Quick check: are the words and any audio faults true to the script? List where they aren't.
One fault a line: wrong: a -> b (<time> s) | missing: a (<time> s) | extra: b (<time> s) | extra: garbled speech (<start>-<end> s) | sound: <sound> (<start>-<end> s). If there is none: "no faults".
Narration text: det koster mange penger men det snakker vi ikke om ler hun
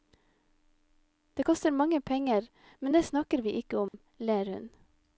sound: dropout (3.9-3.9 s)